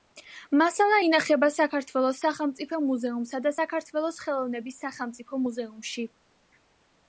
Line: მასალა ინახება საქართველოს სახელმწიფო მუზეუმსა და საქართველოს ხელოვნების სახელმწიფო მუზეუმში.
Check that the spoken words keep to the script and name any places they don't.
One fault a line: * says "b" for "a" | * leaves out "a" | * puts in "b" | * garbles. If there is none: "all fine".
all fine